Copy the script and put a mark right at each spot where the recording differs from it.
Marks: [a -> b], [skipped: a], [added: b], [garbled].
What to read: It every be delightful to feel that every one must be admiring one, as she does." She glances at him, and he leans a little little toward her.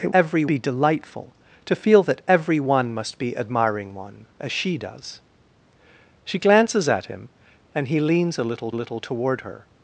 It every be delightful to feel that every one must be admiring one, as she does." She glances at him, and he leans a little little toward her.